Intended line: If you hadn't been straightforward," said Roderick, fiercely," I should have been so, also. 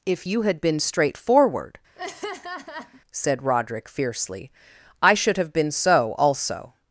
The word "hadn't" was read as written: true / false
false